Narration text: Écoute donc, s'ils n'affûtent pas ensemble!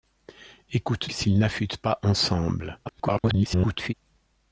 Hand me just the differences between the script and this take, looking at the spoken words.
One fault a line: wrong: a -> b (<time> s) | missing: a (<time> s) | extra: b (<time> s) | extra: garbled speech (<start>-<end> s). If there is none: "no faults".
missing: donc (1.1 s)
extra: garbled speech (2.9-3.9 s)